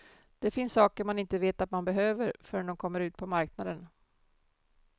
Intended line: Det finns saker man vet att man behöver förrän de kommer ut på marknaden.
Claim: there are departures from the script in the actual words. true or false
true